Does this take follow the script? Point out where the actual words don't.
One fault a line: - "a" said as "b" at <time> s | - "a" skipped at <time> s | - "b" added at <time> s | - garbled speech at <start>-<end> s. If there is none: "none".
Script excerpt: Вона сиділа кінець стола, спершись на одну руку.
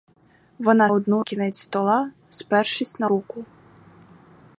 - "сиділа" said as "одну" at 0.9 s
- "одну" skipped at 3.1 s